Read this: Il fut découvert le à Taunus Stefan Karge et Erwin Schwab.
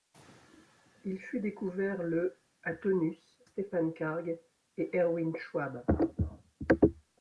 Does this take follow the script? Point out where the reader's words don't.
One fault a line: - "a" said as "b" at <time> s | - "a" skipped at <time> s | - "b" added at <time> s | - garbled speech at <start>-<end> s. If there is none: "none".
none